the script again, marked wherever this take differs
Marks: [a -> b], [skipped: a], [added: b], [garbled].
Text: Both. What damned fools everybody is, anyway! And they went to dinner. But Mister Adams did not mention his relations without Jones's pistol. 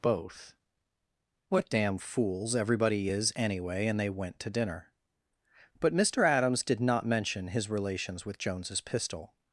Both. What [damned -> damn] fools everybody is, anyway! And they went to dinner. But Mister Adams did not mention his relations [without -> with] Jones's pistol.